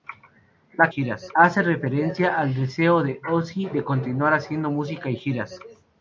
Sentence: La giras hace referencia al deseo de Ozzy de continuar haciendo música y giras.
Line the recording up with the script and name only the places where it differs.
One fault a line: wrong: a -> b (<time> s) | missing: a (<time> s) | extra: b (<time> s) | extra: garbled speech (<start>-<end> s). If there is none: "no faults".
no faults